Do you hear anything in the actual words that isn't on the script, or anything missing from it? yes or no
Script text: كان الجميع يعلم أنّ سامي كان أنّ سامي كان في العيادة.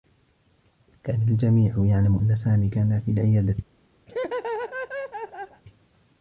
yes